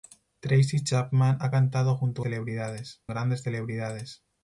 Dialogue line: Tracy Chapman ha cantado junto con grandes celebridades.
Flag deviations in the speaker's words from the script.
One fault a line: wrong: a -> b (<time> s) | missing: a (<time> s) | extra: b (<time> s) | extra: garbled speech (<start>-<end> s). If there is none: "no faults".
wrong: con -> celebridades (2.2 s)